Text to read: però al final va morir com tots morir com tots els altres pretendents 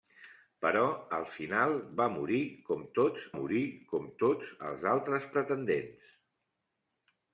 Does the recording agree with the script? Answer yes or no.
yes